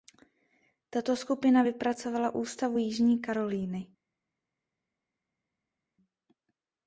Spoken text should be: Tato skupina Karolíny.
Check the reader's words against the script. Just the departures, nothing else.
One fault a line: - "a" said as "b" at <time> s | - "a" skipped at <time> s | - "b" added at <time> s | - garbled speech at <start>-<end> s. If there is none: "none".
- "vypracovala ústavu Jižní" added at 1.6 s